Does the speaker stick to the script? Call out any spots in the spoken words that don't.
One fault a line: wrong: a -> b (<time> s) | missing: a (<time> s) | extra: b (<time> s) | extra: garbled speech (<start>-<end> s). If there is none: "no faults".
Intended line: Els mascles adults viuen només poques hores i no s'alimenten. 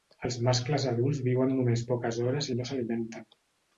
no faults